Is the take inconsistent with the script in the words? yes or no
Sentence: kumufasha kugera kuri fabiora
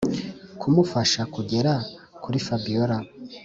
no